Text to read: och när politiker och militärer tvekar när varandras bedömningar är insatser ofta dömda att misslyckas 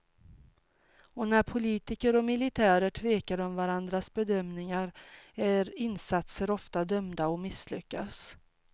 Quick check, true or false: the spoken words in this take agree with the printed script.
false